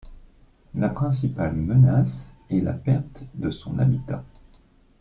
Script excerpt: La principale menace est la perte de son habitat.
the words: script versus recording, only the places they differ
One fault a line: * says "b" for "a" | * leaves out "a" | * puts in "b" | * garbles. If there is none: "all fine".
all fine